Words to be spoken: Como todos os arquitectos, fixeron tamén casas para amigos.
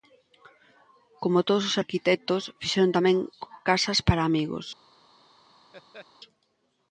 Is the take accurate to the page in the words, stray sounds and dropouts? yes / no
no